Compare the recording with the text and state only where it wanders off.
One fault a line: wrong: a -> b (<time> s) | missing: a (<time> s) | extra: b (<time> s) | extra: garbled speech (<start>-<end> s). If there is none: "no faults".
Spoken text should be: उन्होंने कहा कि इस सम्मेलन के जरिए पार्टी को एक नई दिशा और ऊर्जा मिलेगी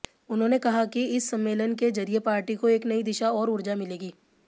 no faults